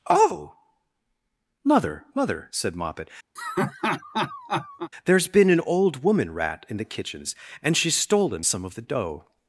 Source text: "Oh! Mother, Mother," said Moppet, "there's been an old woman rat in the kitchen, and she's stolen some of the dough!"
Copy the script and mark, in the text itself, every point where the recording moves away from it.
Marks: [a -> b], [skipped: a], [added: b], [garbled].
"Oh! Mother, Mother," said Moppet, "there's been an old woman rat in the [kitchen, -> kitchens] and she's stolen some of the dough!"